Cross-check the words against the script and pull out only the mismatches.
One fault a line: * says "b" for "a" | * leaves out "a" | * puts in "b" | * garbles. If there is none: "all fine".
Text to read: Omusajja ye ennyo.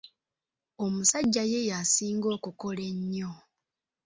* puts in "yasinga okukola"